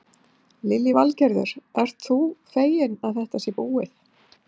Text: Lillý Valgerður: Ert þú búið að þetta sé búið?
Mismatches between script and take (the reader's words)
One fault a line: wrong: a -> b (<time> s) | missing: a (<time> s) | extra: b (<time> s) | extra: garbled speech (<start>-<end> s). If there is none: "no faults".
wrong: búið -> feginn (2.5 s)